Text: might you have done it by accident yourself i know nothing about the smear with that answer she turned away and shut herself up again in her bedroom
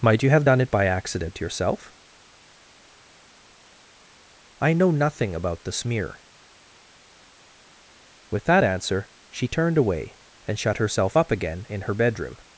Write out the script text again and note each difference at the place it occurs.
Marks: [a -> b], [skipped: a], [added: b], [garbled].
might you have done it by accident yourself i know nothing about the smear with that answer she turned away and shut herself up again in her bedroom